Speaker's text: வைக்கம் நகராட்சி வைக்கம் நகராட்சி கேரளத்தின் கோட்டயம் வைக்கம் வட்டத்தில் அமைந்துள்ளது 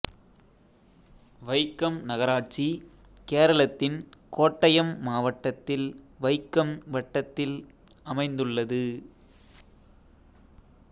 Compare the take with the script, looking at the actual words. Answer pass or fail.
fail